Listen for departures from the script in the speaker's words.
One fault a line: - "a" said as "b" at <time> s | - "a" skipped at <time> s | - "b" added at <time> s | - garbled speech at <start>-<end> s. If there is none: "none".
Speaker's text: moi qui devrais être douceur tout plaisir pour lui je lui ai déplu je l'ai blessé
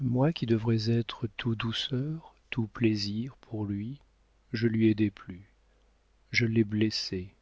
- "tout" added at 1.4 s